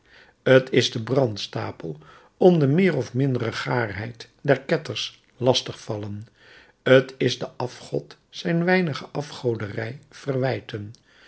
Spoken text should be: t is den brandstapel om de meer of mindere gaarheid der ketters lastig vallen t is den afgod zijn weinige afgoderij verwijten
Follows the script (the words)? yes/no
yes